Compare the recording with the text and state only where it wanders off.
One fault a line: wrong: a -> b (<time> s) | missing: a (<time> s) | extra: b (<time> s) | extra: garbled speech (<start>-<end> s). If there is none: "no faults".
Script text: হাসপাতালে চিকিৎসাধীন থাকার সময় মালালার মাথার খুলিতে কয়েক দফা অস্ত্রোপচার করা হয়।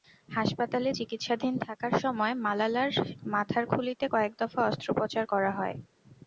no faults